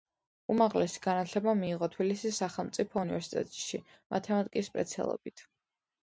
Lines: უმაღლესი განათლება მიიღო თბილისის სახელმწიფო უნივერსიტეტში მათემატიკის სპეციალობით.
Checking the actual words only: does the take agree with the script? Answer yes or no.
yes